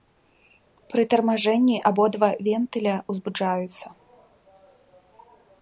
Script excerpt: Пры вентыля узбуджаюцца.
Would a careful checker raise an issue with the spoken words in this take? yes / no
yes